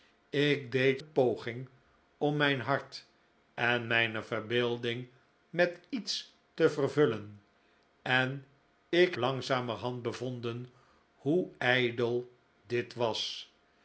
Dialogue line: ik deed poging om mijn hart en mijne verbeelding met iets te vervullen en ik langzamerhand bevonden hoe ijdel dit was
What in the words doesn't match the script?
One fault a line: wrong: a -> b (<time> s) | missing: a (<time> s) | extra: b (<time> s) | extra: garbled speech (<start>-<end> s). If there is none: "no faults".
no faults